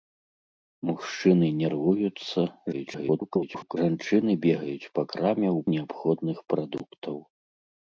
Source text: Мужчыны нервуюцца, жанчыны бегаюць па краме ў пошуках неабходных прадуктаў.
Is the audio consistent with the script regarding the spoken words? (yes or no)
no